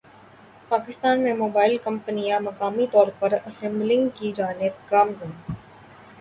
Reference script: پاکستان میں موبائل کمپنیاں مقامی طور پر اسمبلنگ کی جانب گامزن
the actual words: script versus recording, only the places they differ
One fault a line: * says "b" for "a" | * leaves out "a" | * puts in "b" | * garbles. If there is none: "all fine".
all fine